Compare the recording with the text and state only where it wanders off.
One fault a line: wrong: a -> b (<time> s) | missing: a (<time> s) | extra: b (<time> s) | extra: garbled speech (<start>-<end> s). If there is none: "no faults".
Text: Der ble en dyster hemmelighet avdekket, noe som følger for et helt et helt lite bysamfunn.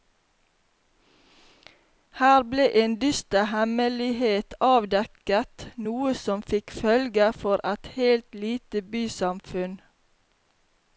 wrong: Der -> Her (2.2 s)
extra: fikk (6.5 s)
missing: et helt (8.4 s)